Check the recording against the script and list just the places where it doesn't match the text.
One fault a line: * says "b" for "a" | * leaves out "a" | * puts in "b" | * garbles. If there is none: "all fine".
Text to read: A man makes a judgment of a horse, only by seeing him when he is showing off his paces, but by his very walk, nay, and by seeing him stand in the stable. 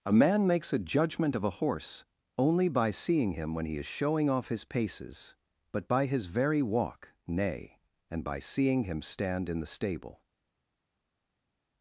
all fine